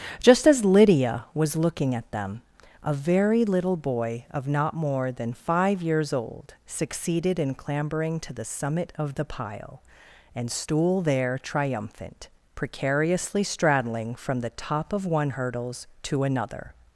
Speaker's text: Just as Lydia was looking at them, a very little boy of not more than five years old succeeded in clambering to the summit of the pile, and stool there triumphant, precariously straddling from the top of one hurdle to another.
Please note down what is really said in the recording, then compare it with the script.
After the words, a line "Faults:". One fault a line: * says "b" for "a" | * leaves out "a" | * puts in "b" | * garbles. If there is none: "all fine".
Just as Lydia was looking at them, a very little boy of not more than five years old succeeded in clambering to the summit of the pile, and stool there triumphant, precariously straddling from the top of one hurdles to another.
Faults:
* says "hurdles" for "hurdle"